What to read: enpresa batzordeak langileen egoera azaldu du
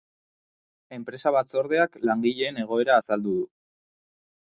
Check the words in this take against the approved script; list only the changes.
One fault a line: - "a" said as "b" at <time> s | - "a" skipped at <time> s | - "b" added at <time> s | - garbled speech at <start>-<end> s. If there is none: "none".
none